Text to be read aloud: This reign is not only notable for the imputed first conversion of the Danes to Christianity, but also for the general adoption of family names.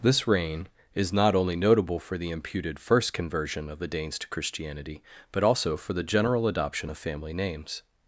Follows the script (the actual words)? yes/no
yes